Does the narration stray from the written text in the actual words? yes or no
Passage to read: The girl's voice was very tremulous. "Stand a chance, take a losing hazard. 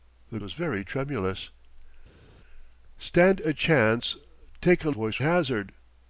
yes